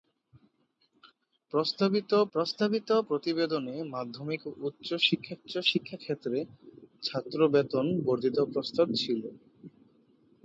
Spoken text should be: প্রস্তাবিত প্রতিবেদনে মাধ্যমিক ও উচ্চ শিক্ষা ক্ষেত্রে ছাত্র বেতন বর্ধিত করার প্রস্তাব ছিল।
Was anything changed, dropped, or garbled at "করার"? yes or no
yes